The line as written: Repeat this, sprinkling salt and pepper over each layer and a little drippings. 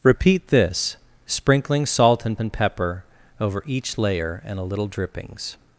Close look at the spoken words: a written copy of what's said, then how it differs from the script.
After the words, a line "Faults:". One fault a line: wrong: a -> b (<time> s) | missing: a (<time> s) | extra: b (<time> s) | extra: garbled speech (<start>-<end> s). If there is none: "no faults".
Repeat this, sprinkling salt and and pepper over each layer and a little drippings.
Faults:
extra: and (2.4 s)